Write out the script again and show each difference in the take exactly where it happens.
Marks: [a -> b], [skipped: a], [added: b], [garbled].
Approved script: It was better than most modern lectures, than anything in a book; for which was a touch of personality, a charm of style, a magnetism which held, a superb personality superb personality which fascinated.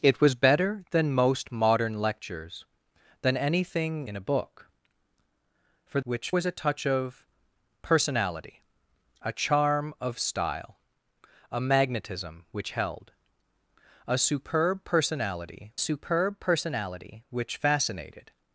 It was better than most modern lectures, than anything in a book; for which was a touch of personality, a charm of style, a magnetism which held, a superb personality superb personality which fascinated.